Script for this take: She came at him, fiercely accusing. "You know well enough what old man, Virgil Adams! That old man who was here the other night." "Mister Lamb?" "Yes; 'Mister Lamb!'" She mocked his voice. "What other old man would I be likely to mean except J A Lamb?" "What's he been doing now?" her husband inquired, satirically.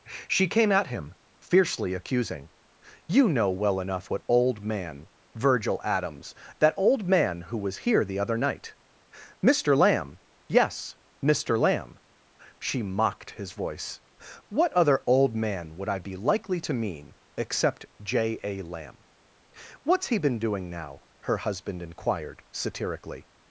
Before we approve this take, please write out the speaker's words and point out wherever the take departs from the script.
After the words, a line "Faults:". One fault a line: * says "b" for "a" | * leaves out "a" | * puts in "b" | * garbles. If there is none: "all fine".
She came at him, fiercely accusing. "You know well enough what old man, Virgil Adams! That old man who was here the other night." "Mister Lamb?" "Yes; 'Mister Lamb!'" She mocked his voice. "What other old man would I be likely to mean except J A Lamb?" "What's he been doing now?" her husband inquired, satirically.
Faults:
all fine